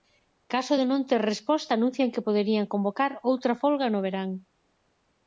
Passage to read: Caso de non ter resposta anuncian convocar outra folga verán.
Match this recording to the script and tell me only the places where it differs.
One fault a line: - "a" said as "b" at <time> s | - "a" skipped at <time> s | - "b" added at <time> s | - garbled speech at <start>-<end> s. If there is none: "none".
- "que poderían" added at 2.1 s
- "no" added at 3.9 s